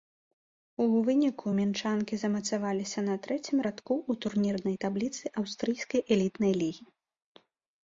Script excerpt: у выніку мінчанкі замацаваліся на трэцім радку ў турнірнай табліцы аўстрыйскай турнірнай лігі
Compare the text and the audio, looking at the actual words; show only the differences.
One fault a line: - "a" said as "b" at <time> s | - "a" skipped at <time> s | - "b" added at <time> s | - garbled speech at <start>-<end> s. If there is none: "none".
- "турнірнай" said as "элітнай" at 6.2 s